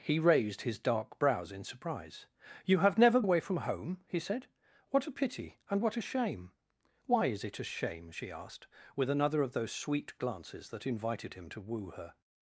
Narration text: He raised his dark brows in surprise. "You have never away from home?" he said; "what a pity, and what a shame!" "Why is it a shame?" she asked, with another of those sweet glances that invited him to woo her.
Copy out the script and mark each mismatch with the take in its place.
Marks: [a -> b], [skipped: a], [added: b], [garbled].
He raised his dark brows in surprise. "You have never away from home?" he said; "what a pity, and what a shame!" "Why is it a shame?" she asked, with another of those sweet glances that invited him to woo her.